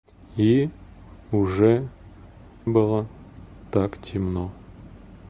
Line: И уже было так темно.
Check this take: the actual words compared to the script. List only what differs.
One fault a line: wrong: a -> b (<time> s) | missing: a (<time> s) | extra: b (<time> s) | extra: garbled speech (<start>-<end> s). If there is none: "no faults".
no faults